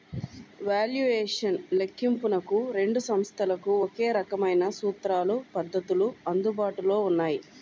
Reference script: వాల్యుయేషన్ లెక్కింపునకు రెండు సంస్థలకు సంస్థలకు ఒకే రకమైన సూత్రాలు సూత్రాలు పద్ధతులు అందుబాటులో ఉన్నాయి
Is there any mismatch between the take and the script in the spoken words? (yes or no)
yes